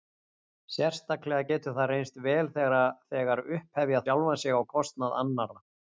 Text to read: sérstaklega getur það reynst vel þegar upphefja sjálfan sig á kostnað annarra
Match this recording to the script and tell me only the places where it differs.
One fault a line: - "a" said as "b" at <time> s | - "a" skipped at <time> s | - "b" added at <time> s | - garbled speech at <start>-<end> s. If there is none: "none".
none